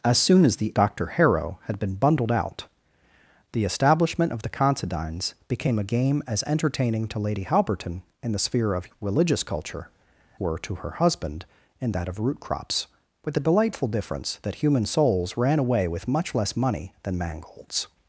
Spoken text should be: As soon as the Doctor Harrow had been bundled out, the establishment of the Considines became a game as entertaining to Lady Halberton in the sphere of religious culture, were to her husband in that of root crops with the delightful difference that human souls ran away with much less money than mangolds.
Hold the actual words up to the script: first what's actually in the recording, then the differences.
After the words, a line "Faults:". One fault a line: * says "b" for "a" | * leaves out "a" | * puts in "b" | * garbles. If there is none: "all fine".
As soon as the Doctor Harrow had been bundled out, the establishment of the Considines became a game as entertaining to Lady Halberton in the sphere of religious culture, were to her husband in that of root crops with the delightful difference that human souls ran away with much less money than mangolds.
Faults:
all fine